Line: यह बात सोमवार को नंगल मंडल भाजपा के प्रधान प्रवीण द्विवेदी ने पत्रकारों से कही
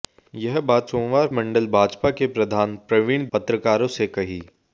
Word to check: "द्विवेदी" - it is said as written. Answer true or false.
false